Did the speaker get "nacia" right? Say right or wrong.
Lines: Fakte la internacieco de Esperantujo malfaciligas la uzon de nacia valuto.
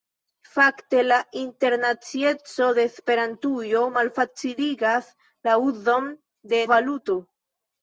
wrong